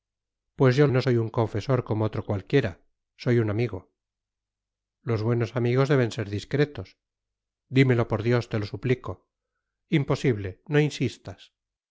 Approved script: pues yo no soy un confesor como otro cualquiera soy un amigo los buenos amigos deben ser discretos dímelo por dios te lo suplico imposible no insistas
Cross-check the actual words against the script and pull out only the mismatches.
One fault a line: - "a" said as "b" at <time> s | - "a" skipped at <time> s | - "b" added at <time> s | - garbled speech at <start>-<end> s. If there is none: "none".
none